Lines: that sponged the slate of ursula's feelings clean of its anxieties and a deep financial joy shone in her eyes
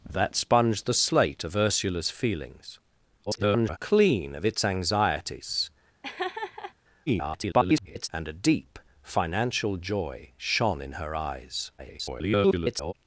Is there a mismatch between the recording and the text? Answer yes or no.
yes